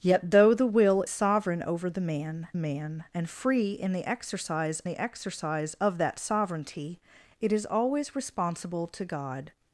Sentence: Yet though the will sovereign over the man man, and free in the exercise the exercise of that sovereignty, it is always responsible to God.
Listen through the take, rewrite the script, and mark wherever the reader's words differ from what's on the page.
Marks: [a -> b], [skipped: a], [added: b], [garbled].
Yet though the will sovereign over the man man, and free in the exercise the exercise of that sovereignty, it is always responsible to God.